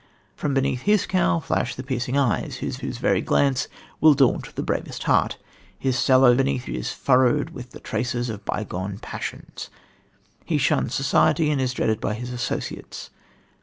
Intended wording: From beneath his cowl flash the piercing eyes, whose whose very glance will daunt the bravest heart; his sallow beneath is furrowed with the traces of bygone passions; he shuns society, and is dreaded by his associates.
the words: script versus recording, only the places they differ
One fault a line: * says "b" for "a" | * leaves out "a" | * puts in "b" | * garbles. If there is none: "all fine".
all fine